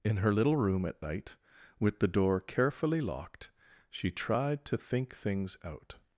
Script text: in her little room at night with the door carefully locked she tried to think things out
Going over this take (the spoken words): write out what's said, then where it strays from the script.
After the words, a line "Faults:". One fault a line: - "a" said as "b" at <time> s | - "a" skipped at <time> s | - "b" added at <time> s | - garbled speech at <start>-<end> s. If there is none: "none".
in her little room at night with the door carefully locked she tried to think things out
Faults:
none